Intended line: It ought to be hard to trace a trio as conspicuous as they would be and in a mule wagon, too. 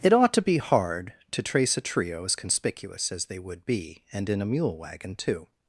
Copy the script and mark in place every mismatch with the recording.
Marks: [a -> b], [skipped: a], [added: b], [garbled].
It ought to be hard to trace a trio as conspicuous as they would be and in a mule wagon, too.